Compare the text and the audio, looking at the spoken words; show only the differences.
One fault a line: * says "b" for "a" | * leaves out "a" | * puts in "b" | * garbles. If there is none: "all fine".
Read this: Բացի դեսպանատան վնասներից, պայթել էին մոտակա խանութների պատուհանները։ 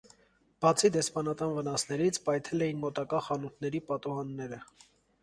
all fine